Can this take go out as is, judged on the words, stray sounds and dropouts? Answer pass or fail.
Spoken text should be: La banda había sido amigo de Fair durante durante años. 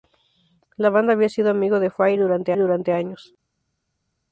pass